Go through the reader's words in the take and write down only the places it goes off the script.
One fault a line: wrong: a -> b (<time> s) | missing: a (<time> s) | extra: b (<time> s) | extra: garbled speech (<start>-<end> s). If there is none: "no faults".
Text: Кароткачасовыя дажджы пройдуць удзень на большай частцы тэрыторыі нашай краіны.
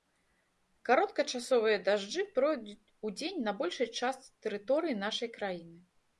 no faults